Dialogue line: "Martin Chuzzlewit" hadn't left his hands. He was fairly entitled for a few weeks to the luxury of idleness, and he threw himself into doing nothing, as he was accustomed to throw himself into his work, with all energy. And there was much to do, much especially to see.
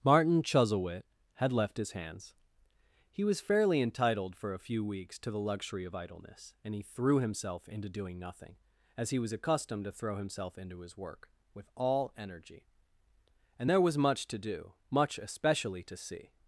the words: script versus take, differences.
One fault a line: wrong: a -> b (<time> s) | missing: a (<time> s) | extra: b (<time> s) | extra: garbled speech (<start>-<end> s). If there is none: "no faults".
wrong: hadn't -> had (1.3 s)